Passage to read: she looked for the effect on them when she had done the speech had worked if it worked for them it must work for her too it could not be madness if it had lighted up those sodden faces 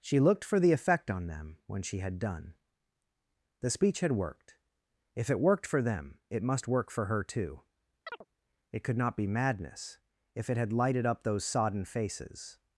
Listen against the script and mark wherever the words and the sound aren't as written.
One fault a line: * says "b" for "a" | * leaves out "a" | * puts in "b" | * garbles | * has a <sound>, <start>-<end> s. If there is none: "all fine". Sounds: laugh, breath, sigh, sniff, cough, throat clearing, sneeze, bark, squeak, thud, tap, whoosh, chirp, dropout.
* has a chirp, 8.1-8.3 s